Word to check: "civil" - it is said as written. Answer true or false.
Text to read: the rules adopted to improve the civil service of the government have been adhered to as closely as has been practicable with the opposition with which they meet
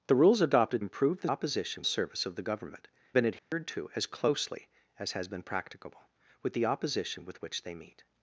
false